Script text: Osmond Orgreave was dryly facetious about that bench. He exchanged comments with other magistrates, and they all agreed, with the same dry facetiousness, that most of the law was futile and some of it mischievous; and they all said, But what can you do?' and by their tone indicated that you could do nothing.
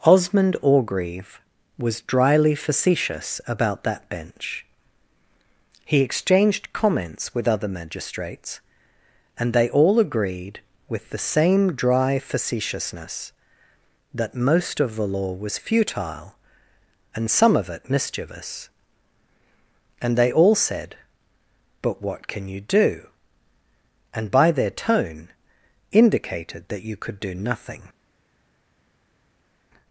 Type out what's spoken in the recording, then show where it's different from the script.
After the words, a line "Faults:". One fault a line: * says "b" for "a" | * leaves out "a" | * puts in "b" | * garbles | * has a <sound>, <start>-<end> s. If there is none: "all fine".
Osmond Orgreave was dryly facetious about that bench. He exchanged comments with other magistrates, and they all agreed, with the same dry facetiousness, that most of the law was futile and some of it mischievous; and they all said, But what can you do?' and by their tone indicated that you could do nothing.
Faults:
all fine